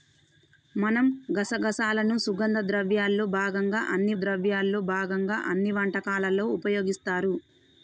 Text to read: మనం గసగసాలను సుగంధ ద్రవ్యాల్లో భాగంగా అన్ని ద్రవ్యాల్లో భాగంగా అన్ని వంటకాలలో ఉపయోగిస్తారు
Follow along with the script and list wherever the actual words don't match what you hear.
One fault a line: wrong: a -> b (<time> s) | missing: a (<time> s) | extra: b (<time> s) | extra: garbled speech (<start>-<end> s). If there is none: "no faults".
no faults